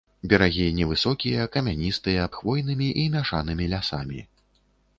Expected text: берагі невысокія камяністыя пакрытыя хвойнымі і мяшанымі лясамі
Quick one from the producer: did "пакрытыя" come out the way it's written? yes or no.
no